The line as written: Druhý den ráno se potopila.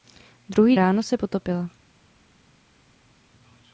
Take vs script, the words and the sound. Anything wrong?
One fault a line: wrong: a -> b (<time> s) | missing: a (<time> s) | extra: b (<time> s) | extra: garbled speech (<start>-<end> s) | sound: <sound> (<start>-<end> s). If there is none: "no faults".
missing: den (0.8 s)